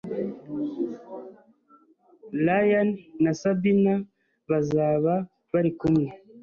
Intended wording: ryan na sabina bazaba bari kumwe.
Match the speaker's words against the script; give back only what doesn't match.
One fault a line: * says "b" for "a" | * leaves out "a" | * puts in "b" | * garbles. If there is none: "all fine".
all fine